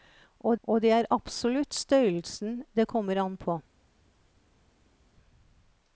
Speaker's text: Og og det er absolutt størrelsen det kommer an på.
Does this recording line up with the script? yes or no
yes